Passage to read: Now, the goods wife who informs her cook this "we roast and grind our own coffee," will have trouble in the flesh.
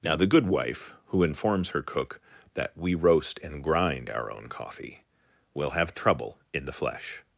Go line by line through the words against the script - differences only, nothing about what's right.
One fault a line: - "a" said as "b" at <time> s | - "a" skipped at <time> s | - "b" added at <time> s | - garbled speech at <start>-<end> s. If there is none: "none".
- "goods" said as "good" at 0.3 s
- "this" said as "that" at 2.5 s